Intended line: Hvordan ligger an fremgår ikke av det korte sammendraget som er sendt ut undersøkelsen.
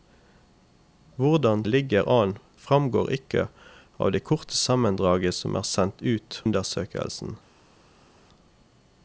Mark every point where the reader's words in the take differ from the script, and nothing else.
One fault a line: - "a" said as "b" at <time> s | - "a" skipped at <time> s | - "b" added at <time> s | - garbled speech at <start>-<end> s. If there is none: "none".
none